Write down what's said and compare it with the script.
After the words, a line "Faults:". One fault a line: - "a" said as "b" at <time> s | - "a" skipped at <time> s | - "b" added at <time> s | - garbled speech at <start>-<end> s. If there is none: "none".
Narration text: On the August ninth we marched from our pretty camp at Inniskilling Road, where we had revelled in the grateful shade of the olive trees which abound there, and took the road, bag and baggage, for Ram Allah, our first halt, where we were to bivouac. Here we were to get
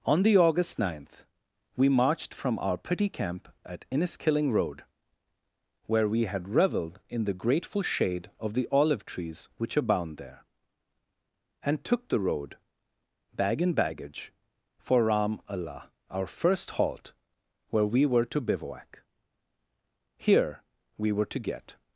On the August ninth we marched from our pretty camp at Inniskilling Road, where we had revelled in the grateful shade of the olive trees which abound there, and took the road, bag and baggage, for Ram Allah, our first halt, where we were to bivouac. Here we were to get
Faults:
none